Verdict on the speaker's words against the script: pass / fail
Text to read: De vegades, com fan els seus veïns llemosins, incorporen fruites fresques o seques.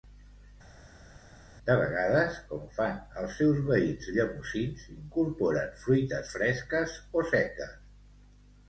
pass